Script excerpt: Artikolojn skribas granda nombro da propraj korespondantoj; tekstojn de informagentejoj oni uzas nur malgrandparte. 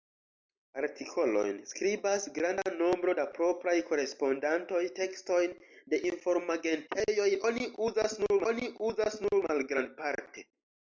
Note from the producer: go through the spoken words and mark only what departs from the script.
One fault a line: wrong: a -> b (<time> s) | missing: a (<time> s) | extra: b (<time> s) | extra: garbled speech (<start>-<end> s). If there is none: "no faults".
extra: oni uzas nur (8.5 s)